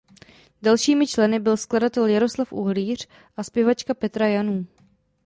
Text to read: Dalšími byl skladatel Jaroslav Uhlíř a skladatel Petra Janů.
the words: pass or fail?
fail